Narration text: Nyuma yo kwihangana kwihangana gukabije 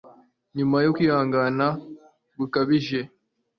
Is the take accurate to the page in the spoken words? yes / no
no